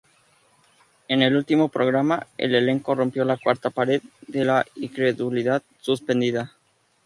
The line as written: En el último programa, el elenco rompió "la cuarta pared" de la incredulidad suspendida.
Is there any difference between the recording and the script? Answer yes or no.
no